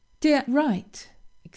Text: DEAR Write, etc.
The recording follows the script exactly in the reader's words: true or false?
true